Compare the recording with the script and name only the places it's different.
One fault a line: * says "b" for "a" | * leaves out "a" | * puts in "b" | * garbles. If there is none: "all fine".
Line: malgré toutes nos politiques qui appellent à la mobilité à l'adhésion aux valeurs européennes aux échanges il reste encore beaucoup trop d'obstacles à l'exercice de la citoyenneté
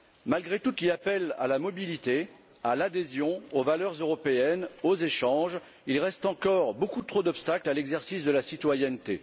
* leaves out "nos politiques"